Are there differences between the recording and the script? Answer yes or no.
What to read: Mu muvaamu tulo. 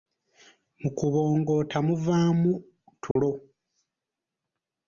yes